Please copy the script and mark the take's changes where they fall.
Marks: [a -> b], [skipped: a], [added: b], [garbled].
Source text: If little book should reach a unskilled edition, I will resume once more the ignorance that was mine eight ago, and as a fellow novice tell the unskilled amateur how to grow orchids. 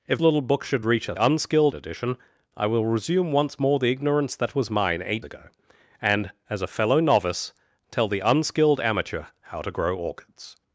If little book should reach a unskilled edition, I will resume once more the ignorance that was mine eight ago, and as a fellow novice tell the unskilled amateur how to grow orchids.